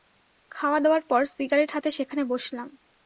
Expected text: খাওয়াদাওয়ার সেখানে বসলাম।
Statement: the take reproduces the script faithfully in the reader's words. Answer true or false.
false